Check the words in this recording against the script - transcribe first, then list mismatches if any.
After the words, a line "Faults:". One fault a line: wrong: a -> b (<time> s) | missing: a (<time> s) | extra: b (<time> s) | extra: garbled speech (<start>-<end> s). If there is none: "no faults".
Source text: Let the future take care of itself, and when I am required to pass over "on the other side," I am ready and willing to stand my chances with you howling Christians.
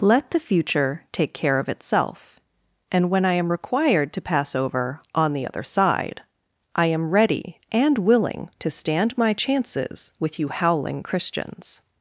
Let the future take care of itself, and when I am required to pass over "on the other side," I am ready and willing to stand my chances with you howling Christians.
Faults:
no faults